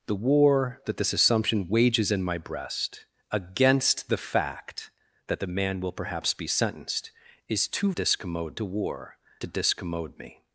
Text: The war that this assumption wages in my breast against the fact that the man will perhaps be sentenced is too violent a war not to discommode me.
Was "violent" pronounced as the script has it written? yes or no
no